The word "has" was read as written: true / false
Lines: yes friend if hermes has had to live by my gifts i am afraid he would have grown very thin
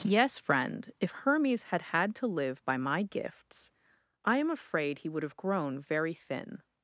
false